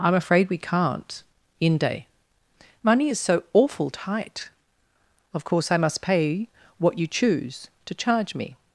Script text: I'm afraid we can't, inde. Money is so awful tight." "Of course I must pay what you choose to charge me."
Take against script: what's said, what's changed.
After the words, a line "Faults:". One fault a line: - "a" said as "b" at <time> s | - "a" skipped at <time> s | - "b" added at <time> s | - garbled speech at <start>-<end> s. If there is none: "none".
I'm afraid we can't, inde. Money is so awful tight." "Of course I must pay what you choose to charge me."
Faults:
none